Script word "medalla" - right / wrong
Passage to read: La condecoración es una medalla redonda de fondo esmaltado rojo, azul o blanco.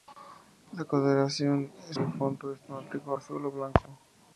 wrong